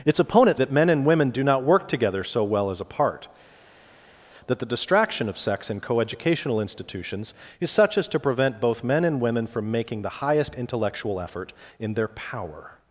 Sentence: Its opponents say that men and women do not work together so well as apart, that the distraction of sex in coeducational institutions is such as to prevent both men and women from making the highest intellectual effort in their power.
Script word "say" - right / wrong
wrong